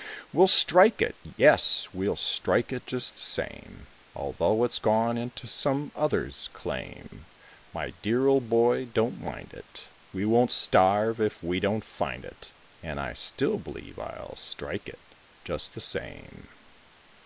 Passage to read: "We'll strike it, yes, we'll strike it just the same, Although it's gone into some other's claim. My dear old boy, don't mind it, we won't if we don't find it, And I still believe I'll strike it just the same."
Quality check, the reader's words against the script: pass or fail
fail